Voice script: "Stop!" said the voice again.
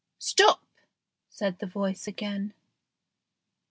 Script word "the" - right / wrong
right